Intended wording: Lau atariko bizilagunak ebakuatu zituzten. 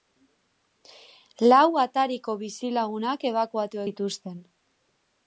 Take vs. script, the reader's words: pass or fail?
pass